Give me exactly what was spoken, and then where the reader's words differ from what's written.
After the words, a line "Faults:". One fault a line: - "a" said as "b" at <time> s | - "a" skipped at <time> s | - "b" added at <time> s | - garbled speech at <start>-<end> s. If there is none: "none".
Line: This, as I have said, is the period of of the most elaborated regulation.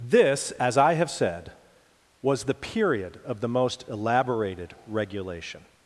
This, as I have said, was the period of the most elaborated regulation.
Faults:
- "is" said as "was" at 2.2 s
- "of" skipped at 3.4 s